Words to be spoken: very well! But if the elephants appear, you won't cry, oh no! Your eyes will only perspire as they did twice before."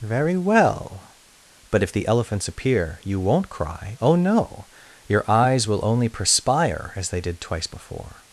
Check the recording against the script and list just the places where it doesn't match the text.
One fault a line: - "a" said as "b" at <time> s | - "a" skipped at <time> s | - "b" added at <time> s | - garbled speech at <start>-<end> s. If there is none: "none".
none